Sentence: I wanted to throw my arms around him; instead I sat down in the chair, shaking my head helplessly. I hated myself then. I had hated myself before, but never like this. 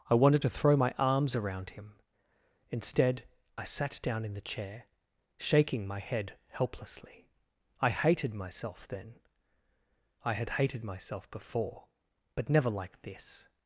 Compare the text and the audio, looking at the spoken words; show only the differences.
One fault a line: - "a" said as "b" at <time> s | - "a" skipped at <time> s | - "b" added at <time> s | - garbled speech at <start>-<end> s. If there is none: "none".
none